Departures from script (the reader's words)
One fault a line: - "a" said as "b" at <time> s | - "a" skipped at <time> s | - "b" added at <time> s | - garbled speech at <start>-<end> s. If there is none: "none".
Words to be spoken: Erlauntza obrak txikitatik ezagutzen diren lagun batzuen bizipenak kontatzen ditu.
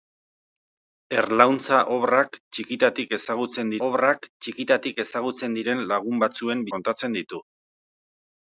- "obrak txikitatik ezagutzen" added at 3.9 s
- "bizipenak" skipped at 6.7 s